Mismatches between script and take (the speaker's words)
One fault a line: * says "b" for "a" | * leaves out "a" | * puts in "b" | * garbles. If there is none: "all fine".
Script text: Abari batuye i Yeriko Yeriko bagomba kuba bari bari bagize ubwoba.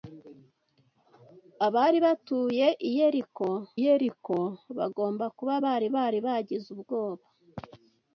all fine